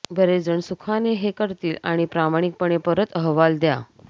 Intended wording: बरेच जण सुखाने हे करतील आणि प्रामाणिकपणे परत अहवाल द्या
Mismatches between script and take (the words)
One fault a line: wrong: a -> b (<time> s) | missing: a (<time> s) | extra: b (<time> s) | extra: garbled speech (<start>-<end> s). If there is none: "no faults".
no faults